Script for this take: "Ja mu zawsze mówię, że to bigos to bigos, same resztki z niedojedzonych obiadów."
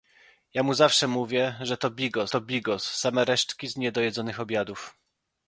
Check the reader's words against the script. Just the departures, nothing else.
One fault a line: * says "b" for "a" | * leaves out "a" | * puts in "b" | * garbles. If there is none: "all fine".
all fine